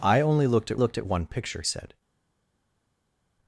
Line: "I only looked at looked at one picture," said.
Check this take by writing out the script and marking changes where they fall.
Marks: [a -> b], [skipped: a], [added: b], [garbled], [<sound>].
"I only looked at looked at one picture," said.